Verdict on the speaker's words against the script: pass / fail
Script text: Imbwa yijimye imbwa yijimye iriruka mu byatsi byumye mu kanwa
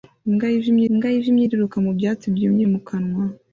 pass